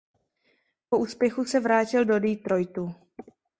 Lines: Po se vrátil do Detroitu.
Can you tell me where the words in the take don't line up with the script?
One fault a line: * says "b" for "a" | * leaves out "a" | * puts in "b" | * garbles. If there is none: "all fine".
* puts in "úspěchu"